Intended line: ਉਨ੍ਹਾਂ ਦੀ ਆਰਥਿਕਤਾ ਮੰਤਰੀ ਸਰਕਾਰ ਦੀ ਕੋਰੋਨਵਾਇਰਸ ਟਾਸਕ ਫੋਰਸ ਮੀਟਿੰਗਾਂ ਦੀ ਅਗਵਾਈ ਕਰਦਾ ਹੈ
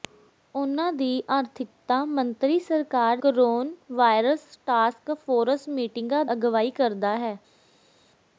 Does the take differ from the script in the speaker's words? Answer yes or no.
yes